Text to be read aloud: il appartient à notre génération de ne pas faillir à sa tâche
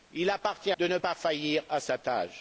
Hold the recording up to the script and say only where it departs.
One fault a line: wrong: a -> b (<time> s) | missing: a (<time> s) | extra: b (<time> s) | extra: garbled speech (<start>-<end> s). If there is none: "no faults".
missing: à notre génération (0.7 s)